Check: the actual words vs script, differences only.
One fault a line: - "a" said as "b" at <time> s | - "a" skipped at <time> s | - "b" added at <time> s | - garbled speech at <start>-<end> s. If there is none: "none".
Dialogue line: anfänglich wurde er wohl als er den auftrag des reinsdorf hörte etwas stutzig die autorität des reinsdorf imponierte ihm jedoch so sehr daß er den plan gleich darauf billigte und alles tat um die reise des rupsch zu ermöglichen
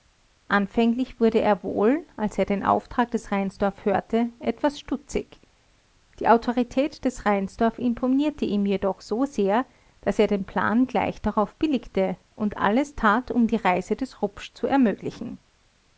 none